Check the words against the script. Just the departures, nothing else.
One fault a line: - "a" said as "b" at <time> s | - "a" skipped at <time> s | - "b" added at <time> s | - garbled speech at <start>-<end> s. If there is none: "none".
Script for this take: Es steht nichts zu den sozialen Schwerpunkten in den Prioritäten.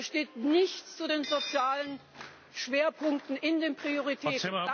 none